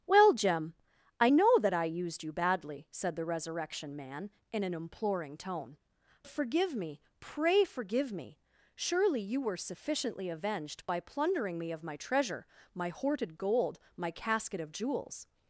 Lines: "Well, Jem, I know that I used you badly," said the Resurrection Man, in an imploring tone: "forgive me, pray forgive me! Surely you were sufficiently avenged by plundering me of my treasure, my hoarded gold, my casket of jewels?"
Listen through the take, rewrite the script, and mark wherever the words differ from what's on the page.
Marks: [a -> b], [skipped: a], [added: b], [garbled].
"Well, Jem, I know that I used you badly," said the Resurrection Man, in an imploring tone: "forgive me, pray forgive me! Surely you were sufficiently avenged by plundering me of my treasure, my hoarded gold, my casket of jewels?"